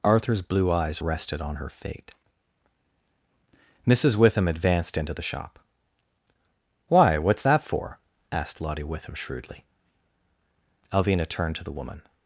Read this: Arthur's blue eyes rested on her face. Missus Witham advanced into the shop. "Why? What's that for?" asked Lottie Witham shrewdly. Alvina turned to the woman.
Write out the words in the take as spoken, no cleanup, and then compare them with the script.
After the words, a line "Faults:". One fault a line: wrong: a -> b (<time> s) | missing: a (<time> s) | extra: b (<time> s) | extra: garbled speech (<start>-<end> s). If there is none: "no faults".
Arthur's blue eyes rested on her fate. Missus Witham advanced into the shop. "Why? What's that for?" asked Lottie Witham shrewdly. Alvina turned to the woman.
Faults:
wrong: face -> fate (1.7 s)